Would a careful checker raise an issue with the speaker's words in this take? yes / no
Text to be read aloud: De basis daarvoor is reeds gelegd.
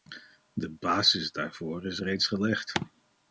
no